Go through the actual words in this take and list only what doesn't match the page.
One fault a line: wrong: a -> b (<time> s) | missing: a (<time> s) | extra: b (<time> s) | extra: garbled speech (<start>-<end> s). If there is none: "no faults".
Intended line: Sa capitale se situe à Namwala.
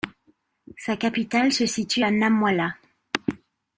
no faults